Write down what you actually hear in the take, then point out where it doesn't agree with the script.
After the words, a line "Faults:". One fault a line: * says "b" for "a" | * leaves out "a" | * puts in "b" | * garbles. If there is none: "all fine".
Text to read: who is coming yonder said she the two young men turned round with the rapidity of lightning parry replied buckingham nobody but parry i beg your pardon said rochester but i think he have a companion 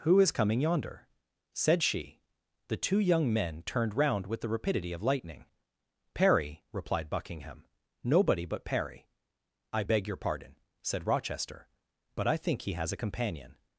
who is coming yonder said she the two young men turned round with the rapidity of lightning parry replied buckingham nobody but parry i beg your pardon said rochester but i think he has a companion
Faults:
* says "has" for "have"